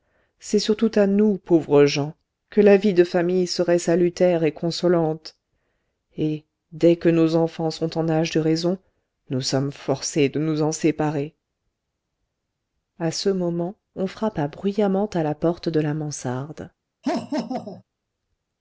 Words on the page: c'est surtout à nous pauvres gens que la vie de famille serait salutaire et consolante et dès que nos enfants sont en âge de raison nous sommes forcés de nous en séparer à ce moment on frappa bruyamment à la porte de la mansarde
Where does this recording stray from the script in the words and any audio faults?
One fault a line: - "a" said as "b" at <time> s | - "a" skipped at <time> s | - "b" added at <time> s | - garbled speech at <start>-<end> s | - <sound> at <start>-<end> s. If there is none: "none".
- laugh at 17.0-17.8 s